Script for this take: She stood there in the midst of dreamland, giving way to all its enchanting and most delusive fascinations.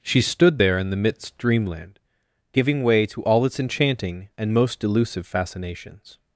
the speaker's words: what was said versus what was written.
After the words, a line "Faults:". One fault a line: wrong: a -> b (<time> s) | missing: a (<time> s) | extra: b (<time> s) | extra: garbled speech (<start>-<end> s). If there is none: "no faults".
She stood there in the midst dreamland, giving way to all its enchanting and most delusive fascinations.
Faults:
missing: of (1.4 s)